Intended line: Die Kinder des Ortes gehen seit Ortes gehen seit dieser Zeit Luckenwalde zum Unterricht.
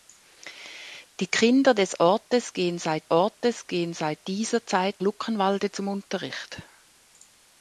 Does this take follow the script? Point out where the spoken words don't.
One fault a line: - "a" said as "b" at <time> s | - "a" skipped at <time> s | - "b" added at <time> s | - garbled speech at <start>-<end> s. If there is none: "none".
none